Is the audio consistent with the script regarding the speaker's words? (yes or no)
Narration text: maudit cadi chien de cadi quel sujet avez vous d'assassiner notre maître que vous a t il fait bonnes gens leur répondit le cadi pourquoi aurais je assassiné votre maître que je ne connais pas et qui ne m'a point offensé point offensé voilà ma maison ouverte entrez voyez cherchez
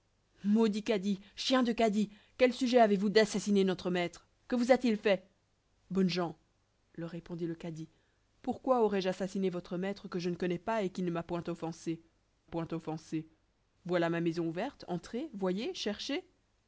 yes